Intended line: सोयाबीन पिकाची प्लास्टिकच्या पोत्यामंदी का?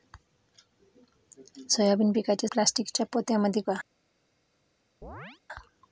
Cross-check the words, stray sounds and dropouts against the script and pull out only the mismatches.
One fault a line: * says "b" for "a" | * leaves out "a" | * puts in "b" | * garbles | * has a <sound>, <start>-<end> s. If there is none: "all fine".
* has a chirp, 5.0-5.4 s